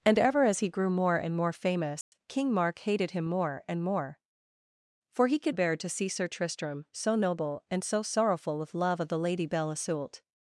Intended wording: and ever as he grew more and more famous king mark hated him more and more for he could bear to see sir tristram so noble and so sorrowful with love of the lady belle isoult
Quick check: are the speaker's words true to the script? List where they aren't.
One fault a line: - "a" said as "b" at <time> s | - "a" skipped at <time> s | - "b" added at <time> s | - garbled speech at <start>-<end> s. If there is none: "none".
none